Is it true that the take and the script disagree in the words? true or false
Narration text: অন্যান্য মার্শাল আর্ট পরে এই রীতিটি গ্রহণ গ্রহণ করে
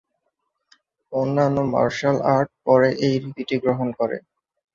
true